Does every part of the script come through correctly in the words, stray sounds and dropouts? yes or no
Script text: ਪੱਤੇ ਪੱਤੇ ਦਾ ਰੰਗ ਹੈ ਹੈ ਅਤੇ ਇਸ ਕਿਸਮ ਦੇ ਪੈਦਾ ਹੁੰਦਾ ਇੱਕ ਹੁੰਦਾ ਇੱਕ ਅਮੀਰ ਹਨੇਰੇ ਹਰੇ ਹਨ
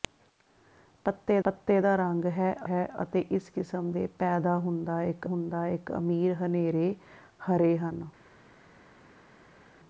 yes